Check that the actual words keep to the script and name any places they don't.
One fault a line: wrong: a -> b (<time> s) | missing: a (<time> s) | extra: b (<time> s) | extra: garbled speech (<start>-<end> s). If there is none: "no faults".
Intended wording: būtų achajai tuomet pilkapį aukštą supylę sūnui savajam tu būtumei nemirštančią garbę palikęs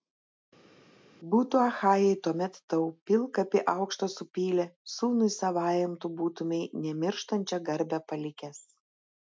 extra: tau (2.7 s)